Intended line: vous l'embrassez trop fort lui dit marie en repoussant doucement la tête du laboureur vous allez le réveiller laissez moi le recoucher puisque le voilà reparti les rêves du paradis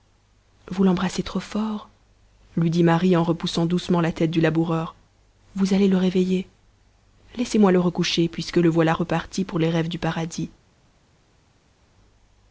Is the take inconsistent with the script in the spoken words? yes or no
yes